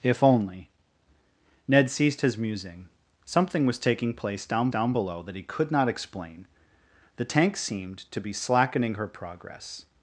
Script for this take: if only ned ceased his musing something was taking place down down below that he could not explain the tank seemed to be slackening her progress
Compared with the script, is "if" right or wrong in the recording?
right